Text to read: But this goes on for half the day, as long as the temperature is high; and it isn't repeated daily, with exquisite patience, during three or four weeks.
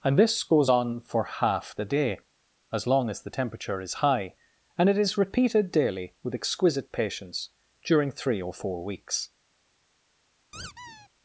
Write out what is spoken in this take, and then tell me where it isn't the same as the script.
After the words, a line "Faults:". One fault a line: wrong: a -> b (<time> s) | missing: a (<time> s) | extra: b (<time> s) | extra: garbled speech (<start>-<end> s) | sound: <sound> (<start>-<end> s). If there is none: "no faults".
And this goes on for half the day, as long as the temperature is high; and it is repeated daily, with exquisite patience, during three or four weeks.
Faults:
wrong: But -> And (0.0 s)
wrong: isn't -> is (5.0 s)
sound: squeak (10.5-11.1 s)